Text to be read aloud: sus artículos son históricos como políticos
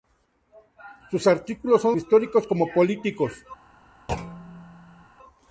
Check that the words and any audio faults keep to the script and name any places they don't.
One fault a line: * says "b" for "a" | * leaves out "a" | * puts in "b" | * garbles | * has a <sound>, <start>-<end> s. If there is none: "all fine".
* has a thud, 4.1-5.1 s